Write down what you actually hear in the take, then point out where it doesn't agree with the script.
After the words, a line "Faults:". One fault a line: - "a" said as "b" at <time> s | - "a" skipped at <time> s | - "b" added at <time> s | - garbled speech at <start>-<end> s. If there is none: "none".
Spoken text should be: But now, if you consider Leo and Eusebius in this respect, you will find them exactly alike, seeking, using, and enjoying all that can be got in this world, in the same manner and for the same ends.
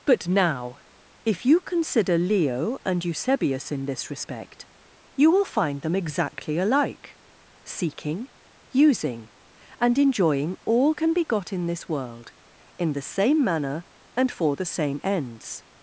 But now, if you consider Leo and Eusebius in this respect, you will find them exactly alike, seeking, using, and enjoying all can be got in this world, in the same manner and for the same ends.
Faults:
- "that" skipped at 10.9 s